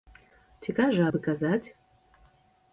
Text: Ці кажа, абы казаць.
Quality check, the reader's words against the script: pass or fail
pass